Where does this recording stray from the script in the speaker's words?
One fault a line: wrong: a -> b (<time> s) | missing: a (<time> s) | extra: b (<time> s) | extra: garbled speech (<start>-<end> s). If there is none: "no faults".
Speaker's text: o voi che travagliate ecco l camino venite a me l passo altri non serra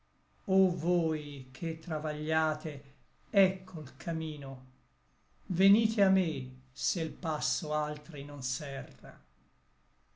extra: se (6.7 s)